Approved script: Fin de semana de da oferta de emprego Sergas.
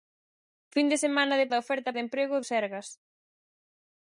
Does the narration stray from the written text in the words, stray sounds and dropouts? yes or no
no